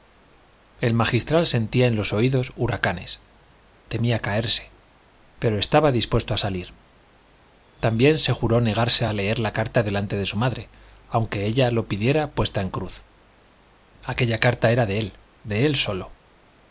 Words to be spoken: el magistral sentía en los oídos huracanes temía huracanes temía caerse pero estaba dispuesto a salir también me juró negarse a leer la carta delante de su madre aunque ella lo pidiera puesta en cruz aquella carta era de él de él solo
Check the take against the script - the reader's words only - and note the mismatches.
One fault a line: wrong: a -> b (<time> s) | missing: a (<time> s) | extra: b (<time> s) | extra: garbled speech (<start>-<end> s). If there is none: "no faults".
missing: huracanes temía (4.2 s)
wrong: me -> se (8.2 s)